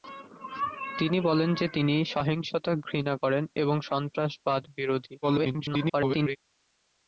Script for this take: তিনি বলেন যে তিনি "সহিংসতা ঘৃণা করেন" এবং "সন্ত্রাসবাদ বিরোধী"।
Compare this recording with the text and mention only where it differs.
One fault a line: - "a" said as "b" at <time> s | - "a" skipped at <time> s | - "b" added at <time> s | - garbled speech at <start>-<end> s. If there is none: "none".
- garbled speech at 5.2-6.4 s